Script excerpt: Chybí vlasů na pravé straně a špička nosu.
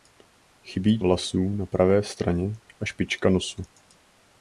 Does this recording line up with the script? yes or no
yes